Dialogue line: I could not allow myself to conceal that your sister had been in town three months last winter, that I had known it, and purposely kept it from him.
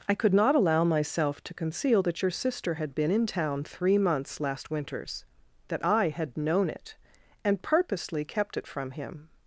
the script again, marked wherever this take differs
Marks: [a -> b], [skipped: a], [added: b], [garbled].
I could not allow myself to conceal that your sister had been in town three months last [winter, -> winters] that I had known it, and purposely kept it from him.